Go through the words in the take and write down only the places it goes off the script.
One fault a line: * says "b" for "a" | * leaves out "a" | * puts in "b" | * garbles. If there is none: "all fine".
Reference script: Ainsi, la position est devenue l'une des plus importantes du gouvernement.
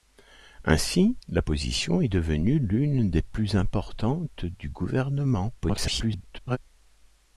* garbles